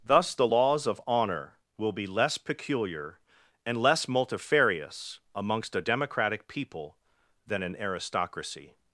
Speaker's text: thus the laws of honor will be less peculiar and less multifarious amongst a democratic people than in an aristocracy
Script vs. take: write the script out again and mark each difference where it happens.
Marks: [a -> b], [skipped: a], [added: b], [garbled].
thus the laws of honor will be less peculiar and less multifarious amongst a democratic people than [skipped: in] an aristocracy